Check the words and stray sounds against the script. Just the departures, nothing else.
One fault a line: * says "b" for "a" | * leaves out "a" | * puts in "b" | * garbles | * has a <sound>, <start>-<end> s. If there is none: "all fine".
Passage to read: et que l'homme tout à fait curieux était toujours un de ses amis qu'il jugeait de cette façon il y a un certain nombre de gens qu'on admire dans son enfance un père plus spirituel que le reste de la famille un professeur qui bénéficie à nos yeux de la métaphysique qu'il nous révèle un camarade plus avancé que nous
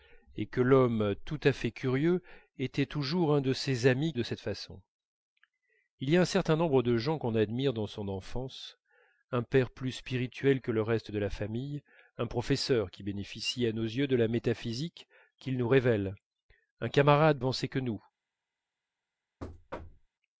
* leaves out "qu'il jugeait"
* leaves out "plus"
* has a thud, 19.4-20.1 s